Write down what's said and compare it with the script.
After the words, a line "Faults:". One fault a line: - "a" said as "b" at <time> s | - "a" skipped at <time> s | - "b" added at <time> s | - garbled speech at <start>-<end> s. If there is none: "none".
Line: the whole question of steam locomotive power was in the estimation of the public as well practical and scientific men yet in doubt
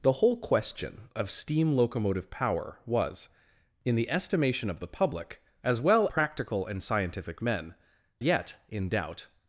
the whole question of steam locomotive power was in the estimation of the public as well practical and scientific men yet in doubt
Faults:
none